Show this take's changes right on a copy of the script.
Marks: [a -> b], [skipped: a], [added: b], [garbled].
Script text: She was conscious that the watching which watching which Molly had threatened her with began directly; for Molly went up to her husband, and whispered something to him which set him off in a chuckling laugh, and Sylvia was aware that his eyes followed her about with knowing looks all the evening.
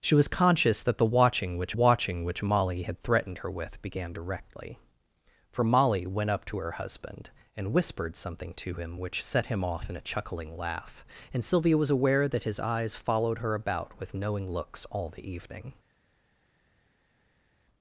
She was conscious that the watching which watching which Molly had threatened her with began directly; for Molly went up to her husband, and whispered something to him which set him off in a chuckling laugh, and Sylvia was aware that his eyes followed her about with knowing looks all the evening.